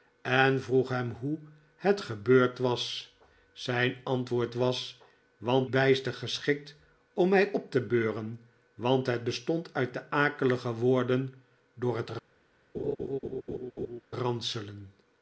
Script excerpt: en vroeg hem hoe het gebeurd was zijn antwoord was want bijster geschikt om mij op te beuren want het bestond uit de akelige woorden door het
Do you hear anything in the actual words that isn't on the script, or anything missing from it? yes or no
no